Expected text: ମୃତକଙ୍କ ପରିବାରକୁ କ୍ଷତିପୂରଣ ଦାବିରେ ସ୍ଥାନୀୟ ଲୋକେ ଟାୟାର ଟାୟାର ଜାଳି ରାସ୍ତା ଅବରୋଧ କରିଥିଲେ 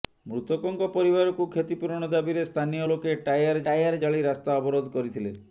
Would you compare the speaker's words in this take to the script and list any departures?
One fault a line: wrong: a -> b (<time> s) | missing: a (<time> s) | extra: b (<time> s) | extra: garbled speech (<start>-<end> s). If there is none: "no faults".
no faults